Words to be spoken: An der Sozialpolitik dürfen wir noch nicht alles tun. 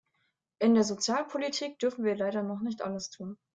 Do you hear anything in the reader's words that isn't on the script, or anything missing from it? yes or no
yes